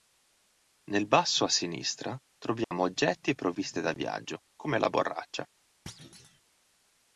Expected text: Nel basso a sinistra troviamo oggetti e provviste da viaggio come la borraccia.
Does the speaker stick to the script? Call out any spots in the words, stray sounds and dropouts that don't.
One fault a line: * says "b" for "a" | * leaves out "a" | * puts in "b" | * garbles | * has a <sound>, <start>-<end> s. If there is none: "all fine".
* has a dropout, 2.6-2.7 s
* has a thud, 5.9-6.4 s